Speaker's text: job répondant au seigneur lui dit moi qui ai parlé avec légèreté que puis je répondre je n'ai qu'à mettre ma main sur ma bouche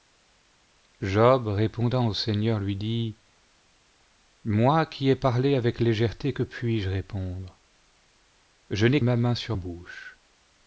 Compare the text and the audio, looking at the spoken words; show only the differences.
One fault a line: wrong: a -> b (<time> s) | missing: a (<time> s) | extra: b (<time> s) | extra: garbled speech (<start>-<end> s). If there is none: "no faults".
missing: qu'à mettre (9.0 s)
missing: ma (9.5 s)